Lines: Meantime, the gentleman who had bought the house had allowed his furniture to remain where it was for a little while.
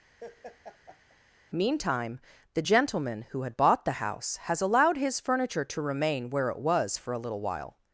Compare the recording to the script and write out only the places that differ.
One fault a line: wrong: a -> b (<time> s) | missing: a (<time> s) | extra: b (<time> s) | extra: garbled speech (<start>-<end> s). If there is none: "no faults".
wrong: had -> has (4.4 s)